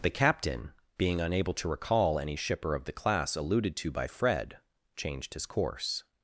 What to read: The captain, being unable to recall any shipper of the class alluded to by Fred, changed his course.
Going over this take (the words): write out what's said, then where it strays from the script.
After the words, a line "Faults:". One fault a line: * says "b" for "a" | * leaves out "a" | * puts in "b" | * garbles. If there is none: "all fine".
The captain, being unable to recall any shipper of the class alluded to by Fred, changed his course.
Faults:
all fine